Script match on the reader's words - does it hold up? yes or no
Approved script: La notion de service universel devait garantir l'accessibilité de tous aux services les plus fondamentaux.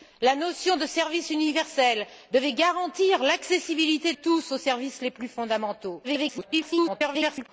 no